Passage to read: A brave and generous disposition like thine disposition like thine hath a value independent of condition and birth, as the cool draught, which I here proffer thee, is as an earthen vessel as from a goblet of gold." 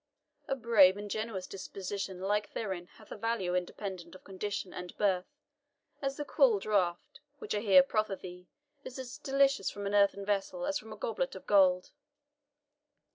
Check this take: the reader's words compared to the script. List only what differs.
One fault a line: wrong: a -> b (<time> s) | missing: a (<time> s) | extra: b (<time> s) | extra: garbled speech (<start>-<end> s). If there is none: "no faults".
missing: disposition like thine (2.9 s)
extra: delicious from (9.2 s)